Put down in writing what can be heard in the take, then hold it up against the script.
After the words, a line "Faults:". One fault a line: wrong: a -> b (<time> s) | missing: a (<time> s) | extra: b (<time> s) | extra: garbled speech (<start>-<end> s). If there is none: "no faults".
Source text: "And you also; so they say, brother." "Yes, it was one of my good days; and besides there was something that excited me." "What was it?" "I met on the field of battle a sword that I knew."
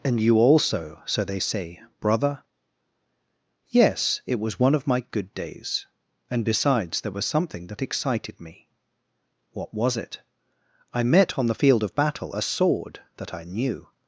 "And you also; so they say, brother." "Yes, it was one of my good days; and besides there was something that excited me." "What was it?" "I met on the field of battle a sword that I knew."
Faults:
no faults